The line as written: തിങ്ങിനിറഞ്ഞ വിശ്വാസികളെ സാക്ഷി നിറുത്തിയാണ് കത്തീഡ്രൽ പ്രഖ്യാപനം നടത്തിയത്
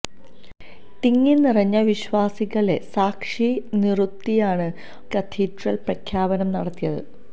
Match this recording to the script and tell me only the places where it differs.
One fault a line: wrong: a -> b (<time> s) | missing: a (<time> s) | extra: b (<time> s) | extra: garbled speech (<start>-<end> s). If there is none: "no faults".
no faults